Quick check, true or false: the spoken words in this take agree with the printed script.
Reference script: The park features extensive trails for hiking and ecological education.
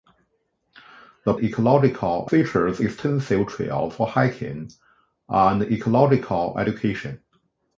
false